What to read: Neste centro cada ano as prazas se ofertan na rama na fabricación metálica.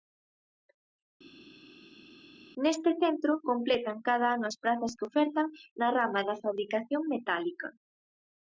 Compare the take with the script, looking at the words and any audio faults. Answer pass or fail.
fail